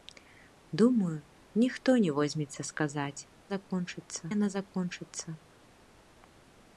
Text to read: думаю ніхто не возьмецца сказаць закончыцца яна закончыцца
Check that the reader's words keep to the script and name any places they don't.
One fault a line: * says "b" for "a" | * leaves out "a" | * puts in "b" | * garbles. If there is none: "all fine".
all fine